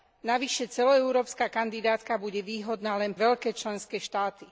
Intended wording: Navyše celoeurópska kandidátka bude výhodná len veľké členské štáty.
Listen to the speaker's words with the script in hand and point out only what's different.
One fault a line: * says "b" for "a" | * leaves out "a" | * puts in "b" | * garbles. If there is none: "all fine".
all fine